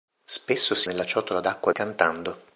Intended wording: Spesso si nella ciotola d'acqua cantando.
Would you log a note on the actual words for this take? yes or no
no